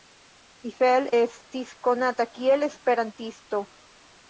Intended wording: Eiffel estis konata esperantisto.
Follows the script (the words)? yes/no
no